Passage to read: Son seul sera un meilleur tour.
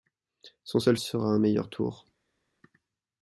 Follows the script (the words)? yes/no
yes